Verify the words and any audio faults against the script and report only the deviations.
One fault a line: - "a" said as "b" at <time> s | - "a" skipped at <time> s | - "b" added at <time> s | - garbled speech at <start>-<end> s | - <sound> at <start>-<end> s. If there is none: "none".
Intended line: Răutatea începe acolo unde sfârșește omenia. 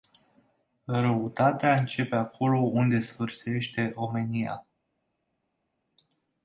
none